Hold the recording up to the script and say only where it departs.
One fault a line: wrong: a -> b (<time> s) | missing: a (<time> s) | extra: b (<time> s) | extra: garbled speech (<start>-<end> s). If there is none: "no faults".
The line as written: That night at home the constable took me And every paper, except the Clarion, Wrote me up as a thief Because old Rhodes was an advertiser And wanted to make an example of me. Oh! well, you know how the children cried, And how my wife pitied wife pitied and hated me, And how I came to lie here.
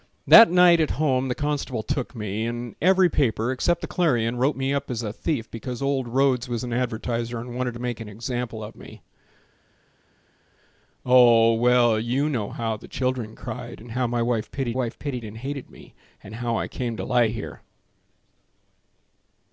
no faults